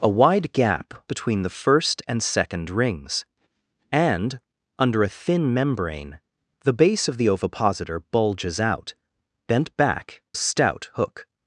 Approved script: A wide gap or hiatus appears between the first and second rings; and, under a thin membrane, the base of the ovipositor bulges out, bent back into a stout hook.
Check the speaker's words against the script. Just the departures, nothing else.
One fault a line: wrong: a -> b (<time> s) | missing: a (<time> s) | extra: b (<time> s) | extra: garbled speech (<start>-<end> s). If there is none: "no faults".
missing: or hiatus appears (0.9 s)
missing: into (10.2 s)